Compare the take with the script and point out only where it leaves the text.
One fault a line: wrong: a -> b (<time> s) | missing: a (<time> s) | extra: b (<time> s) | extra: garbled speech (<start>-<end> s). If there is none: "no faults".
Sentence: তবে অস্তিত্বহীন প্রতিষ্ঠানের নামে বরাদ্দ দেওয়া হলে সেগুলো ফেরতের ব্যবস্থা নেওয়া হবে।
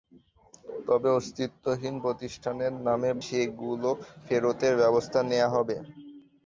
missing: বরাদ্দ দেওয়া হলে (3.1 s)